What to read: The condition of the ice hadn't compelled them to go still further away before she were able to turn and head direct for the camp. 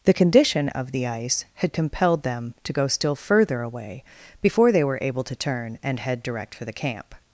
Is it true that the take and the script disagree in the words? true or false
true